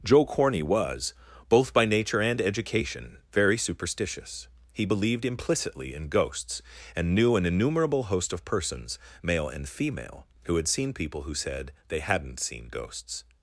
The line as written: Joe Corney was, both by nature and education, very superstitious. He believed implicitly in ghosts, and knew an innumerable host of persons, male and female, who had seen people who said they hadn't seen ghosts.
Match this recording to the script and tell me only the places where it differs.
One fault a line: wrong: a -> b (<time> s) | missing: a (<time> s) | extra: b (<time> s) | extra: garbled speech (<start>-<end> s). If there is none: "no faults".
no faults